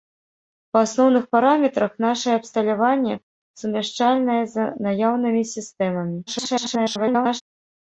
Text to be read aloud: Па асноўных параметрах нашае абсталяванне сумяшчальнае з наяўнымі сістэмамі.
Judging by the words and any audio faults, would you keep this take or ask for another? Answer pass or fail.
fail